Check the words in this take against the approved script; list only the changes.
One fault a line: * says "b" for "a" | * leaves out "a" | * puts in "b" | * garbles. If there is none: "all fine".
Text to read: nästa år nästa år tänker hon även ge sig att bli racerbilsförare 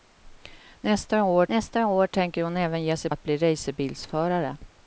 all fine